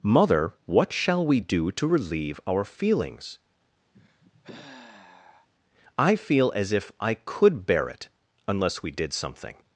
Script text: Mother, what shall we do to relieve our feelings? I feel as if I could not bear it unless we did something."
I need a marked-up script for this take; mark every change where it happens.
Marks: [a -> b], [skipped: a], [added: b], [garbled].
Mother, what shall we do to relieve our feelings? I feel as if I could [skipped: not] bear it unless we did something."